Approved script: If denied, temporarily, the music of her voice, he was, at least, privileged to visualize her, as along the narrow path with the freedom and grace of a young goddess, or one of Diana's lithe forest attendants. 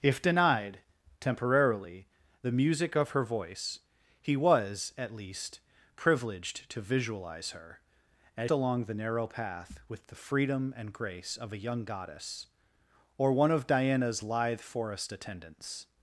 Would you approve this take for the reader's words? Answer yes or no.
yes